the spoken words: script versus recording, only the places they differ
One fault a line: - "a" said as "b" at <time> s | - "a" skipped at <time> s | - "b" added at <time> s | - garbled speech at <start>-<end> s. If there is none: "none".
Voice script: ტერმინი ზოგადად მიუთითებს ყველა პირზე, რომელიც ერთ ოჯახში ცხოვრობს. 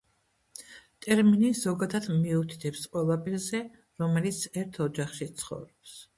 none